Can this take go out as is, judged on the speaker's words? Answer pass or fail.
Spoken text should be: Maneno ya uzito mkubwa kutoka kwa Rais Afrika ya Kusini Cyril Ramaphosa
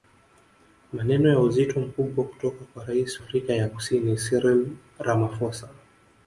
pass